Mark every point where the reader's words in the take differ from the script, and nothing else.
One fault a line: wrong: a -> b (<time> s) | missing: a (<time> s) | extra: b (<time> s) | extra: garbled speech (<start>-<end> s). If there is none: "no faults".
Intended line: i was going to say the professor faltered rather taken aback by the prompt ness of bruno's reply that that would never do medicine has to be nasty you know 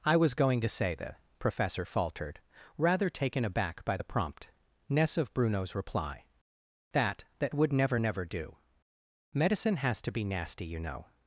extra: never (8.0 s)